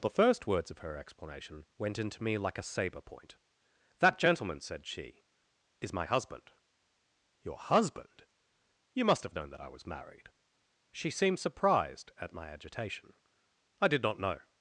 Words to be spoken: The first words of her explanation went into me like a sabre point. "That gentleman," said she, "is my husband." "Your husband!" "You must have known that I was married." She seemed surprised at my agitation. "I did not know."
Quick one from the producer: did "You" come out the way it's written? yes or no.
yes